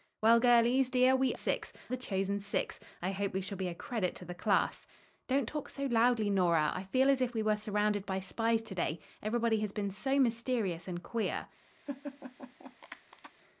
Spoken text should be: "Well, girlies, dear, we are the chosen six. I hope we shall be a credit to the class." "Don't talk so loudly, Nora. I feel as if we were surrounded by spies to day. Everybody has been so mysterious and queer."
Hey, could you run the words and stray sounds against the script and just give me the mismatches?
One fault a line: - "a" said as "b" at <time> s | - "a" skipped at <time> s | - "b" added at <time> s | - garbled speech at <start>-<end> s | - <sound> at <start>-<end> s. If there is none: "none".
- "are" said as "six" at 1.3 s
- laugh at 11.9-13.3 s